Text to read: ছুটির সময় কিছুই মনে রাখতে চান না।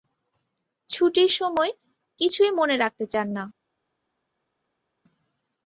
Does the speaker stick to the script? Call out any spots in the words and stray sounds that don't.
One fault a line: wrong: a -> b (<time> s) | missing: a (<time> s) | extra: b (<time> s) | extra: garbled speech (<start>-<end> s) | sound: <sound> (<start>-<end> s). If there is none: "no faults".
no faults